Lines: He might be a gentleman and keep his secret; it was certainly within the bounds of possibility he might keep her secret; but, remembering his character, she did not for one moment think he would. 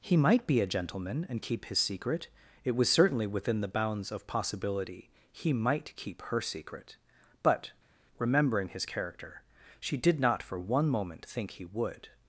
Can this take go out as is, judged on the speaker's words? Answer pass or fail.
pass